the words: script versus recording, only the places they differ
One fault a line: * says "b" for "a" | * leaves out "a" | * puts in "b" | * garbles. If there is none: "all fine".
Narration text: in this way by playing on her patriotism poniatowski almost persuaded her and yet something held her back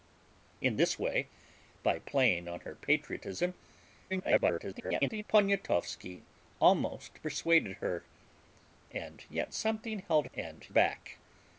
* garbles
* says "and" for "her"